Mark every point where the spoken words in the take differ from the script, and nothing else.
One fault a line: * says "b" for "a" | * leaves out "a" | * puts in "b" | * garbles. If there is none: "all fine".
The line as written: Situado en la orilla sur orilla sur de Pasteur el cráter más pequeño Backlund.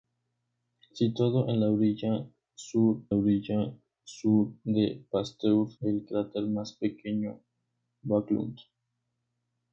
all fine